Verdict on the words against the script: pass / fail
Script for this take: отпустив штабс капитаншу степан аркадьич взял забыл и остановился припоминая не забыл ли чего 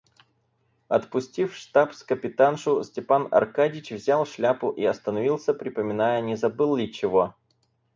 fail